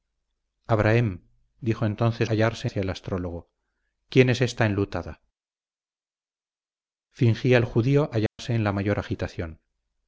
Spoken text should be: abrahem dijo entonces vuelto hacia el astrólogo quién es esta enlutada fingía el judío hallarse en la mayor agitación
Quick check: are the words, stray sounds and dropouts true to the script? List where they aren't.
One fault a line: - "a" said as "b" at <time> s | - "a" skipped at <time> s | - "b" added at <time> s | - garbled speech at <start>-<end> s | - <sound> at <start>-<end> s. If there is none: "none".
- "vuelto" said as "hallarse" at 2.3 s
- dropout at 8.3-8.4 s